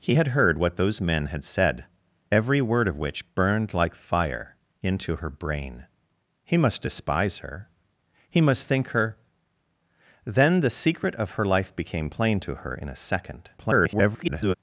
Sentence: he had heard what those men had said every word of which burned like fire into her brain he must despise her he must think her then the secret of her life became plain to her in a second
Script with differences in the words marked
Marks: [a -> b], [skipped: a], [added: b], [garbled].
he had heard what those men had said every word of which burned like fire into her brain he must despise her he must think her then the secret of her life became plain to her in a second [garbled]